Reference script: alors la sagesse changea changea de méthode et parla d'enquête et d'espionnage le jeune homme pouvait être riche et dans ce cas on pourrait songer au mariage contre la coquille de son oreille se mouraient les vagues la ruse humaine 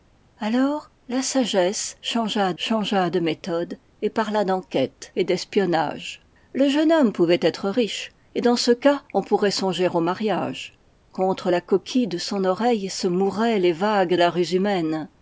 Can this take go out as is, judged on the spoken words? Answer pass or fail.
pass